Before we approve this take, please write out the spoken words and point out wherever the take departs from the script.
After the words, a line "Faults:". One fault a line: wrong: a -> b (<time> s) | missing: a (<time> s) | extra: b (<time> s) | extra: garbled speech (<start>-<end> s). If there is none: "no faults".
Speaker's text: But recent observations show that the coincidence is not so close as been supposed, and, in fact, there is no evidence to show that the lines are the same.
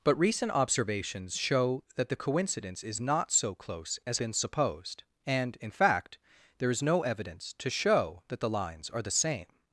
But recent observations show that the coincidence is not so close as been supposed, and, in fact, there is no evidence to show that the lines are the same.
Faults:
no faults